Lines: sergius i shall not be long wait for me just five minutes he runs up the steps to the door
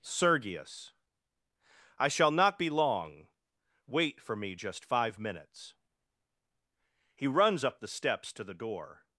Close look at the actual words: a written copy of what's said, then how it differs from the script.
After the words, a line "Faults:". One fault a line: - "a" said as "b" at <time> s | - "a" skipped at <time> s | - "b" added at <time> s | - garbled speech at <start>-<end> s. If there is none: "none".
sergius i shall not be long wait for me just five minutes he runs up the steps to the door
Faults:
none